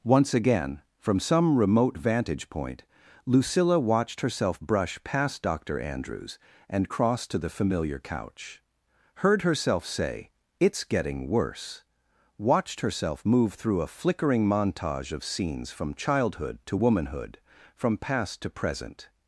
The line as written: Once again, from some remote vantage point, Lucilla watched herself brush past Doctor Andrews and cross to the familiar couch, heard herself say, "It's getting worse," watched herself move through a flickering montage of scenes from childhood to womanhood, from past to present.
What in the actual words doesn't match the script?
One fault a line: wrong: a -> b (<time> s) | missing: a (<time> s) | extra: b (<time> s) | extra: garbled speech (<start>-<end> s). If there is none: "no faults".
no faults